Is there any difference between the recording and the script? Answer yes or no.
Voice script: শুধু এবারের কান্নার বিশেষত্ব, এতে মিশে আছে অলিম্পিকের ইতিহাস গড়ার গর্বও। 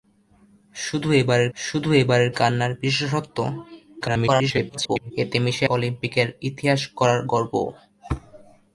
yes